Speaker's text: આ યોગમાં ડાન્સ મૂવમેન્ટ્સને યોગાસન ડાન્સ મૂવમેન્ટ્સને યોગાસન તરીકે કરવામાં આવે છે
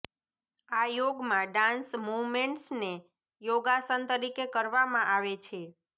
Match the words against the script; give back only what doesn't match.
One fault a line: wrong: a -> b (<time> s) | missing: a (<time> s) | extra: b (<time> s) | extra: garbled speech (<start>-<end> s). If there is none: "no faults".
missing: ડાન્સ મૂવમેન્ટ્સને યોગાસન (4.0 s)